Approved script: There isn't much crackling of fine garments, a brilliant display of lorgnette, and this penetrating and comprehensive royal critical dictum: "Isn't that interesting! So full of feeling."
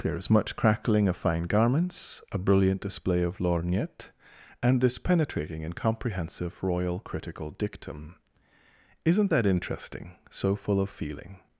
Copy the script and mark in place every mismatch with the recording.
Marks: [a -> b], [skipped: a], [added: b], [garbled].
There [isn't -> is] much crackling of fine garments, a brilliant display of lorgnette, and this penetrating and comprehensive royal critical dictum: "Isn't that interesting! So full of feeling."